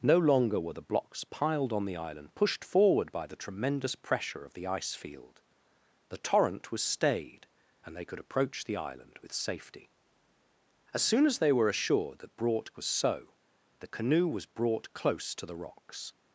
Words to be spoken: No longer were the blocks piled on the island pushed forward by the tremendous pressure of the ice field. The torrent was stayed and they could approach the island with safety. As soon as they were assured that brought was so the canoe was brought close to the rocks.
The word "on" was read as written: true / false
true